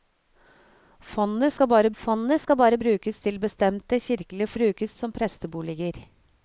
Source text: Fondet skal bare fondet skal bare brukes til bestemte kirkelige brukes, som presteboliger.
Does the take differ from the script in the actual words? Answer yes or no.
no